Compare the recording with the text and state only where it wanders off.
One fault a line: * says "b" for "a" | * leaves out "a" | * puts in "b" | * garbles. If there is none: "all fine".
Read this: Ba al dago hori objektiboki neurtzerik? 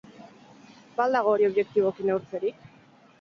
all fine